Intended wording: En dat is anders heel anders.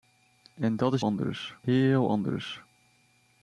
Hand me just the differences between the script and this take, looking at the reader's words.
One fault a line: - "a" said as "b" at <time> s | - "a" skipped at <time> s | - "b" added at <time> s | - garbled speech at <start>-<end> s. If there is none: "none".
none